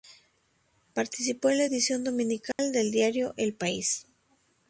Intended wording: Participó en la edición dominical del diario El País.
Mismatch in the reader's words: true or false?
false